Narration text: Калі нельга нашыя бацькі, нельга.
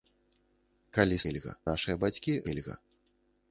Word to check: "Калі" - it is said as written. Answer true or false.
true